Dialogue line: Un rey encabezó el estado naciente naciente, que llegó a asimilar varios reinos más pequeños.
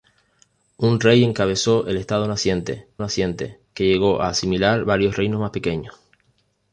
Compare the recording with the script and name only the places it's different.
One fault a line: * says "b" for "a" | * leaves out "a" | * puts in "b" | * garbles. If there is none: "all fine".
all fine